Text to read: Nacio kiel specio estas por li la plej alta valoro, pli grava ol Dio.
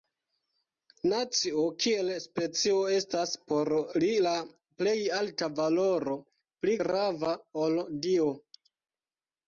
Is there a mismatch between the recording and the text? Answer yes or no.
no